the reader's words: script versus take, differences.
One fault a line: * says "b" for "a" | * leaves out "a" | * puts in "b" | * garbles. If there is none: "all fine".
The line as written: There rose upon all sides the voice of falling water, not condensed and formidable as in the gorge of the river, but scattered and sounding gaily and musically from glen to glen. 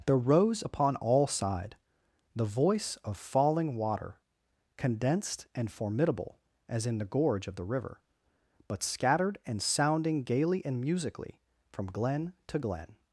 * says "side" for "sides"
* leaves out "not"